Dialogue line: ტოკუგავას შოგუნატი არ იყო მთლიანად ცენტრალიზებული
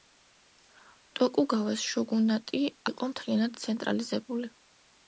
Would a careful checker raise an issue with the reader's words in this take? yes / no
yes